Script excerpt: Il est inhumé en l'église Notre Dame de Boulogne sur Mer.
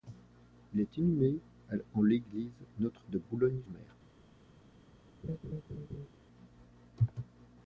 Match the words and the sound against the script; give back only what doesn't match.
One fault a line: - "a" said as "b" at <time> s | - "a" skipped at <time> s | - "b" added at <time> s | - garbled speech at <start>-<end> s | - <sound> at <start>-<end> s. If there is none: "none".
- "Dame" skipped at 3.1 s
- "sur" skipped at 3.6 s
- laugh at 5.2-6.1 s